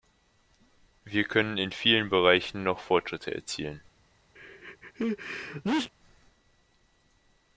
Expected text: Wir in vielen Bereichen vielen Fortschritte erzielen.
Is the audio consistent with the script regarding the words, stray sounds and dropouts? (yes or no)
no